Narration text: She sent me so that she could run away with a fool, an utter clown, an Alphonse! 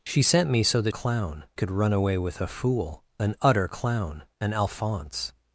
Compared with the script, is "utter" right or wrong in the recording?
right